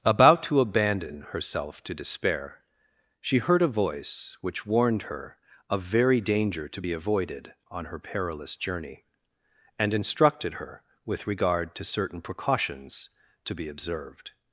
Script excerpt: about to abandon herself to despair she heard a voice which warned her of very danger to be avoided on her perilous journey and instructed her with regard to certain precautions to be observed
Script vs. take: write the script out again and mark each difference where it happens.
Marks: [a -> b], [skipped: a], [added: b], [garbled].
about to abandon herself to despair she heard a voice which warned her of very danger to be avoided on her perilous journey and instructed her with regard to certain precautions to be observed